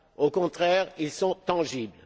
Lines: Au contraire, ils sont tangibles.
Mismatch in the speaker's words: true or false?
false